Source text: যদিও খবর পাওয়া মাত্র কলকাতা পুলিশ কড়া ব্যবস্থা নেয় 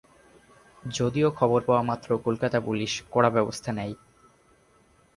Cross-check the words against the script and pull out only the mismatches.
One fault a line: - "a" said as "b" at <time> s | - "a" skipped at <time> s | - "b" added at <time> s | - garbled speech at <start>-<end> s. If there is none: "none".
none